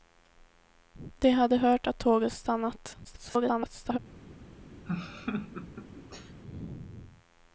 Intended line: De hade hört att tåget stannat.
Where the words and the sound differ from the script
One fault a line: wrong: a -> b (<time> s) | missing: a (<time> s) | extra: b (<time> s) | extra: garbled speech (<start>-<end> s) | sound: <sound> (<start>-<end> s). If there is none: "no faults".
extra: garbled speech (3.0-4.0 s)
sound: laugh (4.9-6.4 s)